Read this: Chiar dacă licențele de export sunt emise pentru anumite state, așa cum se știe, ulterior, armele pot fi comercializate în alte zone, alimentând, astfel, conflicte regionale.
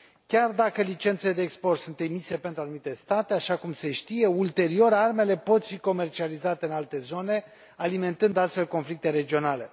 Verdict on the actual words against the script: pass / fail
pass